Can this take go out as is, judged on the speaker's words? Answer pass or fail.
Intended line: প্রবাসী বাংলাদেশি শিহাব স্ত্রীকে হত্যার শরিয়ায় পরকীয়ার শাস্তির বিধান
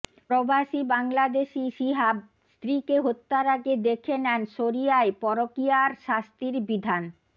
fail